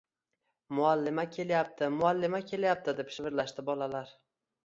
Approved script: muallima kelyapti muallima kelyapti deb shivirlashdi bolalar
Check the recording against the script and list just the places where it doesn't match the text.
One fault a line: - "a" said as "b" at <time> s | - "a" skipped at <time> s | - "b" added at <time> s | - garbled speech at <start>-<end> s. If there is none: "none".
none